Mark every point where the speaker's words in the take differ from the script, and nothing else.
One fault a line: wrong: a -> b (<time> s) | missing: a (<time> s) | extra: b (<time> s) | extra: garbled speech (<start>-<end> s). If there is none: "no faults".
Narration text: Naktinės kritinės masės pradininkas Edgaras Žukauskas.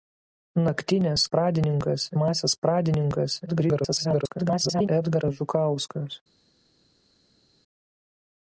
wrong: kritinės -> pradininkas (1.3 s)
extra: garbled speech (3.5-4.9 s)